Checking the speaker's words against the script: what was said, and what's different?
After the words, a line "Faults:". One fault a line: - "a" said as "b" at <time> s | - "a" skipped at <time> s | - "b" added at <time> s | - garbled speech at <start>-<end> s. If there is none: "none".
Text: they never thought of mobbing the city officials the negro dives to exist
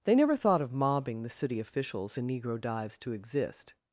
they never thought of mobbing the city officials the negro dives to exist
Faults:
none